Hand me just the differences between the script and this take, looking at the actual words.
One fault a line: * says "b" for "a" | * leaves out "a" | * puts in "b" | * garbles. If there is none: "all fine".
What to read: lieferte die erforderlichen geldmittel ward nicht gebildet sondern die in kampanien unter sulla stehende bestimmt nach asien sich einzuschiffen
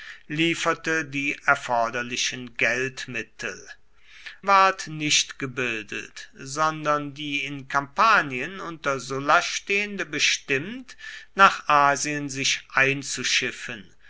all fine